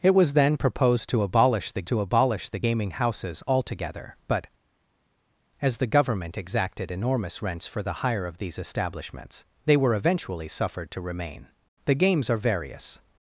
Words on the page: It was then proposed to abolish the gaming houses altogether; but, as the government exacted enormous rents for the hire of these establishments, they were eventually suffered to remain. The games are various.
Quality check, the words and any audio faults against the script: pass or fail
fail